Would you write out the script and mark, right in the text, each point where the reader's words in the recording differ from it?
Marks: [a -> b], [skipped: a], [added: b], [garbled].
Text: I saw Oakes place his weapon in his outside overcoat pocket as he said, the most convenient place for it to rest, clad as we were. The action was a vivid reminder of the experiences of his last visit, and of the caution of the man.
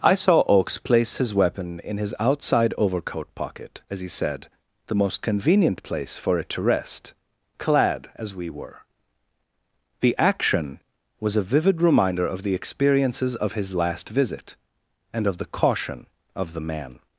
I saw Oakes place his weapon in his outside overcoat pocket as he said, the most convenient place for it to rest, clad as we were. The action was a vivid reminder of the experiences of his last visit, and of the caution of the man.